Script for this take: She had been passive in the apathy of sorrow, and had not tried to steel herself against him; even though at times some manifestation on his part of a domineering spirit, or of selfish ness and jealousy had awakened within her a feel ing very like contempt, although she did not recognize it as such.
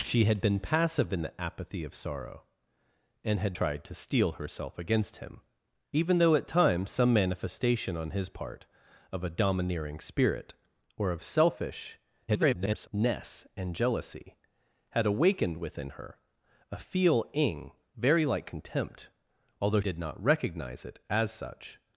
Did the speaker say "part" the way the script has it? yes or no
yes